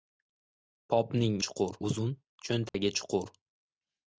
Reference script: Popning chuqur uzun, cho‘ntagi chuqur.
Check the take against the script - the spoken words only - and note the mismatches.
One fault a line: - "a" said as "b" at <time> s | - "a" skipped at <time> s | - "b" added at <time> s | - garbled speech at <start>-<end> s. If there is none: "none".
none